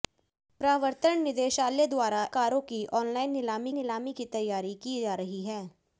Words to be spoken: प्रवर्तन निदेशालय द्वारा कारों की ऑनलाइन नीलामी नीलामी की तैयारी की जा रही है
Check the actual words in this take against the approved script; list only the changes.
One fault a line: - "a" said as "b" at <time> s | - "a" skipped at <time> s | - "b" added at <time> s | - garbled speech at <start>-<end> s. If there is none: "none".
none